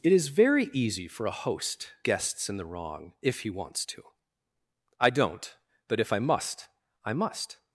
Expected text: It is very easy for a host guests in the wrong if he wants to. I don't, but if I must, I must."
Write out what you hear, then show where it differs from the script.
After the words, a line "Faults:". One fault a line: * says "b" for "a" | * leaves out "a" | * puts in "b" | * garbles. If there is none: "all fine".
It is very easy for a host guests in the wrong if he wants to. I don't, but if I must, I must."
Faults:
all fine